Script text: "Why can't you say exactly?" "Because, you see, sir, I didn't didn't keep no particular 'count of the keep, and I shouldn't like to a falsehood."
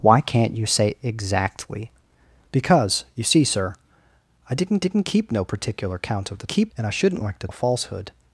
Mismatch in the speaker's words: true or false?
false